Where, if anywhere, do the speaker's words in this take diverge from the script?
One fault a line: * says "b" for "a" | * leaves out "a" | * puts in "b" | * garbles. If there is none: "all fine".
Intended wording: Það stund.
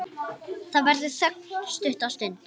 * puts in "verður þögn stutta"